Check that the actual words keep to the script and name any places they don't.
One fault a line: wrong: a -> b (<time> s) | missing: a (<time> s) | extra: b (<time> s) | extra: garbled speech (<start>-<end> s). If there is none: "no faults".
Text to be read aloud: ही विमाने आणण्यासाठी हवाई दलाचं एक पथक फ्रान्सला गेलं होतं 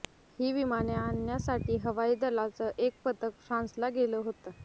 no faults